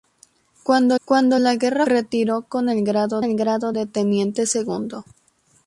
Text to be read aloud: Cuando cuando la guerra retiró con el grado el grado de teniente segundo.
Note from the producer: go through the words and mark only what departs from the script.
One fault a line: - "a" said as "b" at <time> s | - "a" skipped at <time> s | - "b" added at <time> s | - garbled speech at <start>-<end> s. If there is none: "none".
none